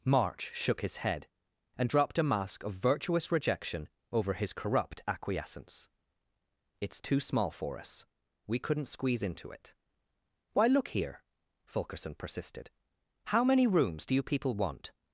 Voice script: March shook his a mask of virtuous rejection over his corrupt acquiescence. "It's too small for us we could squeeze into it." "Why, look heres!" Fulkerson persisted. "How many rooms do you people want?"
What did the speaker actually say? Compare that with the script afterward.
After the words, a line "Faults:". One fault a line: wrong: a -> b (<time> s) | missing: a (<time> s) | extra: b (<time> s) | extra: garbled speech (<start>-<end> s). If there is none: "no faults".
March shook his head, and dropped a mask of virtuous rejection over his corrupt acquiescence. "It's too small for us we couldn't squeeze into it." "Why, look here!" Fulkerson persisted. "How many rooms do you people want?"
Faults:
extra: head and dropped (1.0 s)
wrong: could -> couldn't (8.6 s)
wrong: heres -> here (10.9 s)